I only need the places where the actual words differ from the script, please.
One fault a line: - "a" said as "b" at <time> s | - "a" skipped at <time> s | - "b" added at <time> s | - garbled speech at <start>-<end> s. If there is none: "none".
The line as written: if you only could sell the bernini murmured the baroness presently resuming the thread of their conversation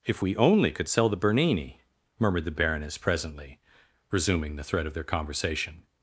- "you" said as "we" at 0.2 s